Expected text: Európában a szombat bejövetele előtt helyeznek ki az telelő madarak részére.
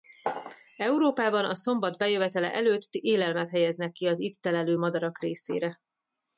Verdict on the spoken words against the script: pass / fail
fail